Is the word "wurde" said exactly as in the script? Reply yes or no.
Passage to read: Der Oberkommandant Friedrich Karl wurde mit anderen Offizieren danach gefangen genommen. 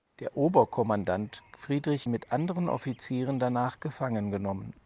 no